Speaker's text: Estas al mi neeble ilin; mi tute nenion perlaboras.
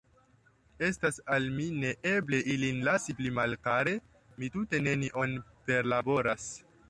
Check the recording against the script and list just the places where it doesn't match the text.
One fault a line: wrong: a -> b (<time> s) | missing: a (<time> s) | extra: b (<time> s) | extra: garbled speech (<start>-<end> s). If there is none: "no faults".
extra: lasi pli malkare (2.9 s)